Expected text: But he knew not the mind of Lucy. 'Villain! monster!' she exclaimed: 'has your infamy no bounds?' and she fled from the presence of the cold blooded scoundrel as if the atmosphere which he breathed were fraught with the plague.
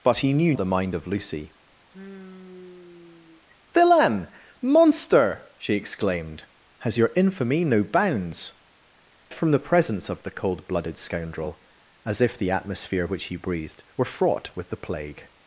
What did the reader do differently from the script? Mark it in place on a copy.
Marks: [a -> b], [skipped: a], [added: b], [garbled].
But he knew [skipped: not] the mind of Lucy. 'Villain! monster!' she exclaimed: 'has your infamy no bounds?' [skipped: and she fled] from the presence of the cold blooded scoundrel as if the atmosphere which he breathed were fraught with the plague.